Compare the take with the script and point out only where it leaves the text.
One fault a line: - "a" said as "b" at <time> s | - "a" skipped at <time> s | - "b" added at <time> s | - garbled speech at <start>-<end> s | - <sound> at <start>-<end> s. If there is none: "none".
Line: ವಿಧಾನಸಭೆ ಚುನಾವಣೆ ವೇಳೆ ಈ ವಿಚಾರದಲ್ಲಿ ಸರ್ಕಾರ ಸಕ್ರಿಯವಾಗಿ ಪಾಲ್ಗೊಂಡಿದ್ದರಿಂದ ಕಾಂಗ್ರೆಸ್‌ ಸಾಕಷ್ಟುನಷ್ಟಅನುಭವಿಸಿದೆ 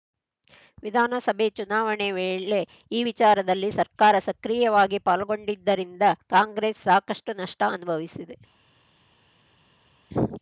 none